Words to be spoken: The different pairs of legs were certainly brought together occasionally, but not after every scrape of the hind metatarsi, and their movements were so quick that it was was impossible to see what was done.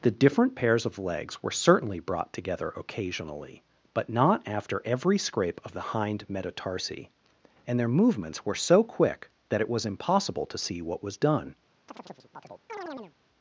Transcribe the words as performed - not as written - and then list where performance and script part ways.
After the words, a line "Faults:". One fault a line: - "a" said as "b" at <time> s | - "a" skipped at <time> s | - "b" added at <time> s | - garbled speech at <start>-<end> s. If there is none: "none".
The different pairs of legs were certainly brought together occasionally, but not after every scrape of the hind metatarsi, and their movements were so quick that it was impossible to see what was done.
Faults:
- "was" skipped at 9.9 s